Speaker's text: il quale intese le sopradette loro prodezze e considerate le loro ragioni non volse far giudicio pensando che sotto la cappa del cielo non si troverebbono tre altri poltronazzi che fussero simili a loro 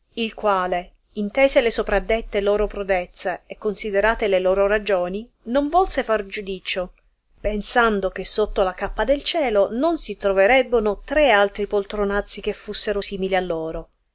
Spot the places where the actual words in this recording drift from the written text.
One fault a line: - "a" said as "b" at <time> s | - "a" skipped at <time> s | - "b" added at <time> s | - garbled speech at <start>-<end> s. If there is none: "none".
none